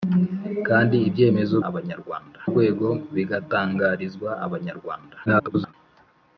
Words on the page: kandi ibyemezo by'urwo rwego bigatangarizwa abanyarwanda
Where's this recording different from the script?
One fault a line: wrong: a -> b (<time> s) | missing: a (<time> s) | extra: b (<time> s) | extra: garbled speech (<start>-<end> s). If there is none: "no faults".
wrong: by'urwo -> abanyarwanda (1.7 s)
extra: garbled speech (5.3-5.7 s)